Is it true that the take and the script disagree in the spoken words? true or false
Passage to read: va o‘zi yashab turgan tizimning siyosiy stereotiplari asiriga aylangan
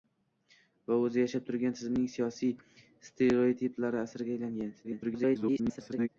true